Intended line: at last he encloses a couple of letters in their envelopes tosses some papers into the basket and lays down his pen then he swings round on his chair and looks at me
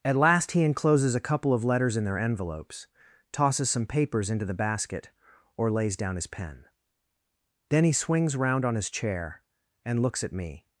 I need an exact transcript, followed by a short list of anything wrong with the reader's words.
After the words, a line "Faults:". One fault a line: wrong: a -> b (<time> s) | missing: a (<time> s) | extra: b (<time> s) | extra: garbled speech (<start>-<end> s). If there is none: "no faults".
at last he encloses a couple of letters in their envelopes tosses some papers into the basket or lays down his pen then he swings round on his chair and looks at me
Faults:
wrong: and -> or (5.6 s)